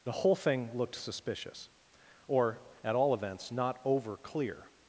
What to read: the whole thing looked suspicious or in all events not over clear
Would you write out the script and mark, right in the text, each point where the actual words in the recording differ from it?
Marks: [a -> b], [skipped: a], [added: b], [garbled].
the whole thing looked suspicious or [in -> at] all events not over clear